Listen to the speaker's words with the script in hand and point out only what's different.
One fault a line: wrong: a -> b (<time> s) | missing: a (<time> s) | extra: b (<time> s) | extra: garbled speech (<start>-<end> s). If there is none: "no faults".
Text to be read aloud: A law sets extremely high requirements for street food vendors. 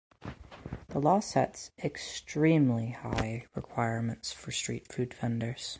wrong: A -> The (0.9 s)